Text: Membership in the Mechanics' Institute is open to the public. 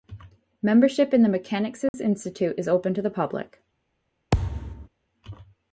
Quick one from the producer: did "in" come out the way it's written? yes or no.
yes